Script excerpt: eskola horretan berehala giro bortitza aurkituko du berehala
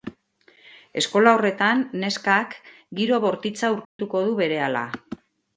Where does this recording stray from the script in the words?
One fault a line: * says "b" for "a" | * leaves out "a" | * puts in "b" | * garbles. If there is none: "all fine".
* says "neskak" for "berehala"